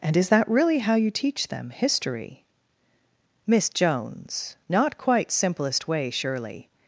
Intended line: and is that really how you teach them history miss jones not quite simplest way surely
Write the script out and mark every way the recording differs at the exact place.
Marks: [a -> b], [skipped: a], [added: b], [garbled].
and is that really how you teach them history miss jones not quite simplest way surely